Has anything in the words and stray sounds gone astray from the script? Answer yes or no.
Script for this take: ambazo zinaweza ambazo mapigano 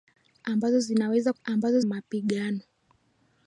no